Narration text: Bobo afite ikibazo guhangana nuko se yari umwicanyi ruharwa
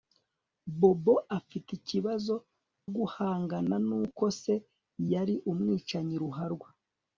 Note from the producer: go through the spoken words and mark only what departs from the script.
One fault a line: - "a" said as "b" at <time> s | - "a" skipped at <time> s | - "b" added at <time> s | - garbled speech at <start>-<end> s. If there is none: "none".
none